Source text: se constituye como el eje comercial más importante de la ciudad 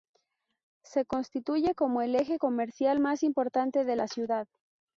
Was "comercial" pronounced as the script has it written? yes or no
yes